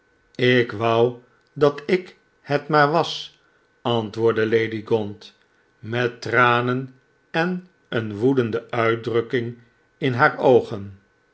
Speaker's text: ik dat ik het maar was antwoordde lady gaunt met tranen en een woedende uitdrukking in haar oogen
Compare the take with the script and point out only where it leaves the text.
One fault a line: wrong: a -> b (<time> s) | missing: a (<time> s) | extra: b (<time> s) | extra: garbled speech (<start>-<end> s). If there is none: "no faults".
extra: wou (0.7 s)